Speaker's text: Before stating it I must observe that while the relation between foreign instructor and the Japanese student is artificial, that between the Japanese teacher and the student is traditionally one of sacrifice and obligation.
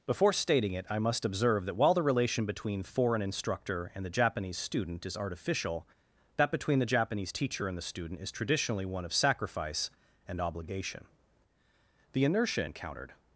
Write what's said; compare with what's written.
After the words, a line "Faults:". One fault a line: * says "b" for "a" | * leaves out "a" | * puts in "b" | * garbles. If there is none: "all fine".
Before stating it I must observe that while the relation between foreign instructor and the Japanese student is artificial, that between the Japanese teacher and the student is traditionally one of sacrifice and obligation. The inertia encountered
Faults:
* puts in "The inertia encountered"